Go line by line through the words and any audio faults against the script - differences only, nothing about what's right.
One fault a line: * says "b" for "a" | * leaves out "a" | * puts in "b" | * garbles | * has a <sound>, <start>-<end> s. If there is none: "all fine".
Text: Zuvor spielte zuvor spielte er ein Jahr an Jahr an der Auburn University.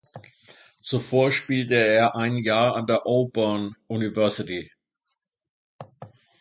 * leaves out "zuvor spielte"
* leaves out "Jahr an"